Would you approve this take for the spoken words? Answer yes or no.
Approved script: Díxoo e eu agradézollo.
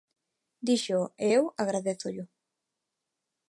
yes